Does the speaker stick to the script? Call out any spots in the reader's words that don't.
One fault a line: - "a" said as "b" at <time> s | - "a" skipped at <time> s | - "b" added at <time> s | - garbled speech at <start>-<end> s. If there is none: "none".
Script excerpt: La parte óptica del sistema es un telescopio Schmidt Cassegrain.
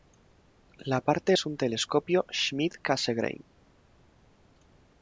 - "óptica del sistema" skipped at 1.4 s